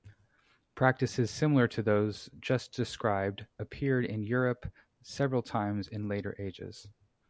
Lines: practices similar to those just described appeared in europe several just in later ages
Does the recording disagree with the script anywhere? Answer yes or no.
yes